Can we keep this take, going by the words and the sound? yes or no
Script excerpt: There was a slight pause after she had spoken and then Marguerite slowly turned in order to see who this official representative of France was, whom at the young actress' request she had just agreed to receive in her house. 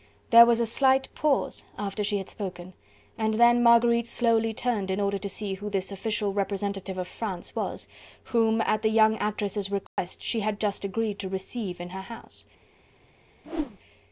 no